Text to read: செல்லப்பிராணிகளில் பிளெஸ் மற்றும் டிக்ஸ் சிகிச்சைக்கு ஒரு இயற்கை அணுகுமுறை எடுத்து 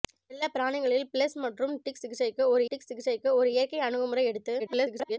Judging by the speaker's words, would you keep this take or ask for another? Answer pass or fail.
fail